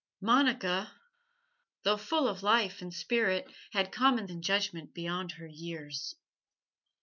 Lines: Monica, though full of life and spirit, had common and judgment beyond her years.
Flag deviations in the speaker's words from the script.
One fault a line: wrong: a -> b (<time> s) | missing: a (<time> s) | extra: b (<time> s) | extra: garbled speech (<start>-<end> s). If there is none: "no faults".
no faults